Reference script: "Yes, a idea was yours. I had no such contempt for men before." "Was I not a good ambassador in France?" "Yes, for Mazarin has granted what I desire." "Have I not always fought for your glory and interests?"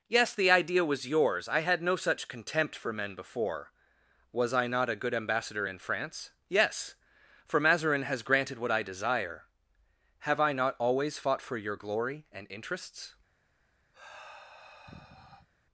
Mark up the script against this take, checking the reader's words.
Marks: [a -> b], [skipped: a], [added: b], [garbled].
"Yes, [a -> the] idea was yours. I had no such contempt for men before." "Was I not a good ambassador in France?" "Yes, for Mazarin has granted what I desire." "Have I not always fought for your glory and interests?"